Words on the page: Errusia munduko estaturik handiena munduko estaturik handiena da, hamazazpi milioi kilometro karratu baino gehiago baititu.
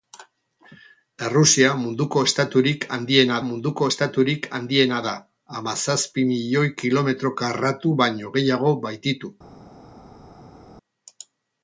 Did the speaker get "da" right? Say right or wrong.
right